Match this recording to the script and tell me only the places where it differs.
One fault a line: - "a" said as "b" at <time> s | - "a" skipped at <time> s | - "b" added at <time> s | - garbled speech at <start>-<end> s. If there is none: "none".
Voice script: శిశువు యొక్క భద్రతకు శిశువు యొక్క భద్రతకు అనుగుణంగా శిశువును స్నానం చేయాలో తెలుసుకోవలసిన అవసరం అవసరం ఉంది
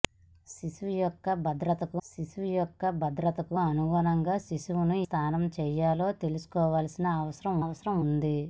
none